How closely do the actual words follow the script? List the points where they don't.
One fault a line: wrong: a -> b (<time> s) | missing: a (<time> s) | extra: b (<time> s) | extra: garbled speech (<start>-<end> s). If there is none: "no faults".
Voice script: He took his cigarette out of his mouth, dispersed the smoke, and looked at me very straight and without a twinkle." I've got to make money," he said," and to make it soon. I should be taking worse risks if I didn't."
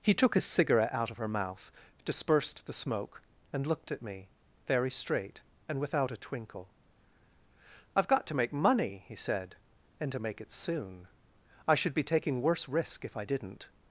wrong: his -> her (1.2 s)
wrong: risks -> risk (12.7 s)